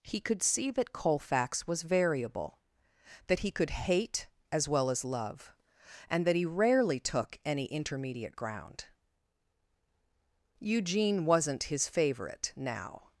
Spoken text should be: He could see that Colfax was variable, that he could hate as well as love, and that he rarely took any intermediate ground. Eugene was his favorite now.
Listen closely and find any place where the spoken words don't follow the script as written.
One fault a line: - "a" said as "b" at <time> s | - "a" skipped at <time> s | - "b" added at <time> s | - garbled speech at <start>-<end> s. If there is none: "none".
- "was" said as "wasn't" at 11.2 s